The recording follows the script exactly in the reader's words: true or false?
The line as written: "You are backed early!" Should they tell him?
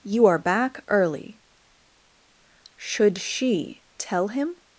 false